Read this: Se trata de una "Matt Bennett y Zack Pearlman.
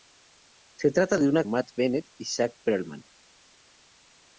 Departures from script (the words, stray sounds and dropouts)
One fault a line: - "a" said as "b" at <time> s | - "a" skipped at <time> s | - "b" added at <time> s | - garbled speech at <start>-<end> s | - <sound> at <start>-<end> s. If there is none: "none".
none